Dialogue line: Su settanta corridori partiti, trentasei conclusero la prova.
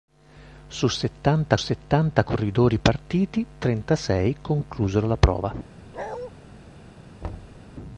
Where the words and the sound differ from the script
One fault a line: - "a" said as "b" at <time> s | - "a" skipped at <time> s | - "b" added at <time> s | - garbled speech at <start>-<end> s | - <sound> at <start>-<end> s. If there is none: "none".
- "settanta" added at 1.5 s
- bark at 5.9-6.3 s
- thud at 7.2-7.6 s